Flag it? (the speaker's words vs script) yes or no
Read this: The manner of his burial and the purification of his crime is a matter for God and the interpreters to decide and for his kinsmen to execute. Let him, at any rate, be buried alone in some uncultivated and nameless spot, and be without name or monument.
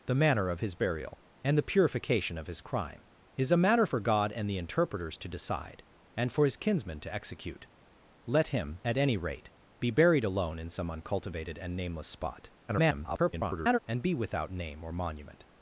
yes